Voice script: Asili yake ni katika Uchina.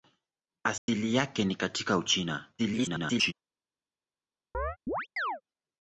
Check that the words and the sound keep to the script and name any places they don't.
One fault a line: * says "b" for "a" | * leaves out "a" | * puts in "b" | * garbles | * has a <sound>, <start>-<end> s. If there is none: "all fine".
* has a dropout, 0.8-0.9 s
* garbles
* has a chirp, 4.5-5.4 s